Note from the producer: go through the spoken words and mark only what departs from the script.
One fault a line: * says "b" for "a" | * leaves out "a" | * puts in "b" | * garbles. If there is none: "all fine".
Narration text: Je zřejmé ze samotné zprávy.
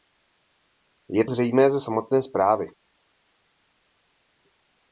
all fine